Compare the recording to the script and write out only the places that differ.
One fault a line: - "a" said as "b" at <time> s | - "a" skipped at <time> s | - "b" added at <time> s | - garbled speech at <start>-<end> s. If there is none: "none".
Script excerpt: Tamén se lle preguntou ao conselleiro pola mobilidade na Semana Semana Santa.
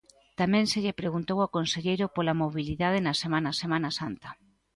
none